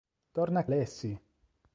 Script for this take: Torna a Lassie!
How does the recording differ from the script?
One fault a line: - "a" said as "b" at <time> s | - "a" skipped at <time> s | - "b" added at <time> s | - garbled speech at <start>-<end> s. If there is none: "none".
none